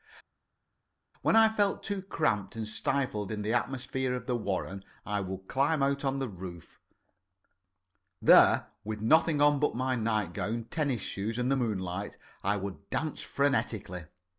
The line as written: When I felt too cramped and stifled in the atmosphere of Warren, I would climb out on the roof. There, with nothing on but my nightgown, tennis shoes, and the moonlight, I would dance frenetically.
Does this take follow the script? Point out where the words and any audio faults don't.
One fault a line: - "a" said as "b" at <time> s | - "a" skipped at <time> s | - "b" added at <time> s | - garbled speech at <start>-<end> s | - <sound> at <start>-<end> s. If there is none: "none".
- "the" added at 4.3 s